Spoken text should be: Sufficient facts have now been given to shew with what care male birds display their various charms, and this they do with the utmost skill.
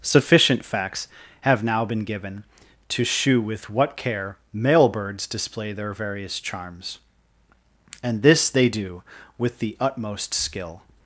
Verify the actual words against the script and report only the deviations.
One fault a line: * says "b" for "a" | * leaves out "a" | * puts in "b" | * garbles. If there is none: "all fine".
all fine